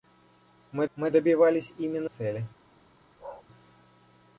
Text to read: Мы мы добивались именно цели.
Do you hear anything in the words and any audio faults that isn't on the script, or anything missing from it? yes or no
yes